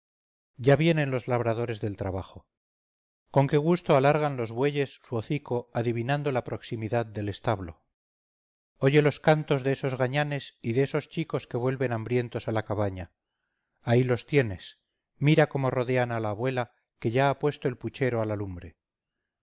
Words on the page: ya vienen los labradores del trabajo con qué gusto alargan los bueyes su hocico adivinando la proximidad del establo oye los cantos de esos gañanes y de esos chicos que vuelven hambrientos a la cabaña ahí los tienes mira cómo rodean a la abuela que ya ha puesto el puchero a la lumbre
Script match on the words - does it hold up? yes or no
yes